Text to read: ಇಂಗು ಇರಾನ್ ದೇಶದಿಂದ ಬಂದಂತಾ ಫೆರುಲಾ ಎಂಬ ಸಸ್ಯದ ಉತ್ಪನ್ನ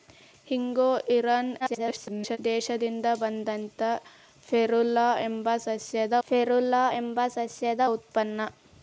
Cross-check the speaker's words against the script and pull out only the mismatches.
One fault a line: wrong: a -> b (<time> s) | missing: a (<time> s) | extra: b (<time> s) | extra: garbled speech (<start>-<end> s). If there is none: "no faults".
extra: garbled speech (1.6-2.4 s)
extra: ಫೆರುಲಾ ಎಂಬ ಸಸ್ಯದ (6.3 s)